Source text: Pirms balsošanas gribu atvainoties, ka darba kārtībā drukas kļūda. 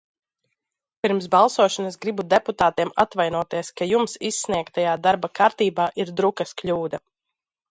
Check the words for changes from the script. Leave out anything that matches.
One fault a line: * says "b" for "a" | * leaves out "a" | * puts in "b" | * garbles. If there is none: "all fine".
* puts in "deputātiem"
* puts in "jums izsniegtajā"
* puts in "ir"